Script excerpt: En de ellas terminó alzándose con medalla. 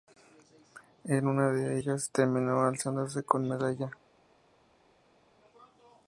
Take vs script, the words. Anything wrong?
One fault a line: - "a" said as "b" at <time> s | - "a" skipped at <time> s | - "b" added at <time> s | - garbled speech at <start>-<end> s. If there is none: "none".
- "una" added at 1.3 s